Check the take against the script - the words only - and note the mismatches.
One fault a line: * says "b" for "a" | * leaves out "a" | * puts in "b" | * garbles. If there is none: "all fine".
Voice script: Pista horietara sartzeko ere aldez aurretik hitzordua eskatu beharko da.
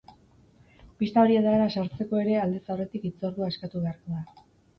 all fine